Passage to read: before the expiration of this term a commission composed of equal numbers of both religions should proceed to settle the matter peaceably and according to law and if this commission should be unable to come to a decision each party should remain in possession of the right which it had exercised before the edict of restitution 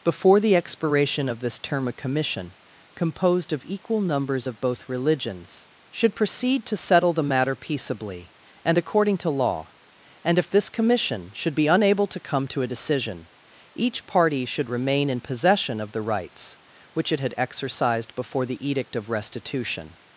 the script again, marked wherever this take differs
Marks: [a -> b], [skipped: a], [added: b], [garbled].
before the expiration of this term a commission composed of equal numbers of both religions should proceed to settle the matter peaceably and according to law and if this commission should be unable to come to a decision each party should remain in possession of the [right -> rights] which it had exercised before the edict of restitution